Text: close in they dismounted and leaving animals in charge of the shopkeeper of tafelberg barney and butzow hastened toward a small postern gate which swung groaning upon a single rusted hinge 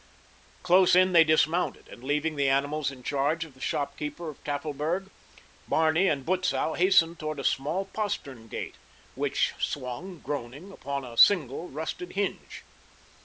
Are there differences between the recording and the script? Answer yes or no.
yes